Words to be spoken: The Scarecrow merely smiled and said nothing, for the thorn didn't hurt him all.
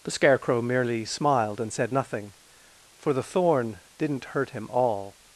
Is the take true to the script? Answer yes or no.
yes